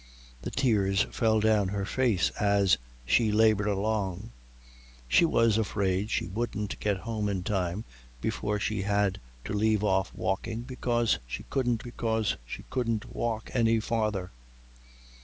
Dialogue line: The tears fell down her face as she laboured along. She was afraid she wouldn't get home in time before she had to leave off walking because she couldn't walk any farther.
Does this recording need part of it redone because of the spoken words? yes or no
yes